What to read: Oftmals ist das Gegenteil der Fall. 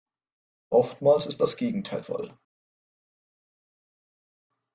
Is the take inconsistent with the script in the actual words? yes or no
yes